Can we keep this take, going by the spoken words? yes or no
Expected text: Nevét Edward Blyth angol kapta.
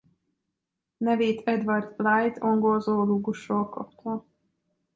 no